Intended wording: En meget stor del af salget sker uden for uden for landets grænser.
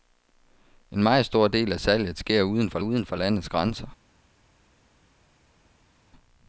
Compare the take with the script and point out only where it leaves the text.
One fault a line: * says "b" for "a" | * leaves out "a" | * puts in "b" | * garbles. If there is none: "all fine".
all fine